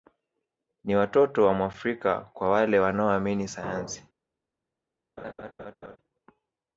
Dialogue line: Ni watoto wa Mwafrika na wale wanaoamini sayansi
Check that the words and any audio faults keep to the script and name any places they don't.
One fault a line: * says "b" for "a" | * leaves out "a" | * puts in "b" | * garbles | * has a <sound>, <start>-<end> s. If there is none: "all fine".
* says "kwa" for "na"
* has a laugh, 5.2-6.0 s